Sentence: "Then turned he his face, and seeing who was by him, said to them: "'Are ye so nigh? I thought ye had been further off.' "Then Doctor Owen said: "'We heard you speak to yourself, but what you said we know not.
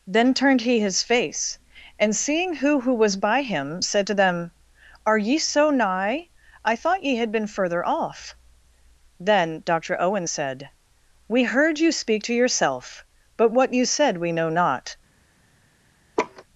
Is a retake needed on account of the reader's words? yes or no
yes